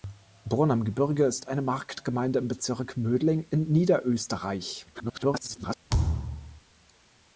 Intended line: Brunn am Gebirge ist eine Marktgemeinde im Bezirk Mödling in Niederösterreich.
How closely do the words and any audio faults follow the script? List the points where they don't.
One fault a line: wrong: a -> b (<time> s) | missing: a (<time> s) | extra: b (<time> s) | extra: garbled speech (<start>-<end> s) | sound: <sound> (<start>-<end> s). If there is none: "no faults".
extra: garbled speech (4.9-5.8 s)
sound: thud (5.9-6.6 s)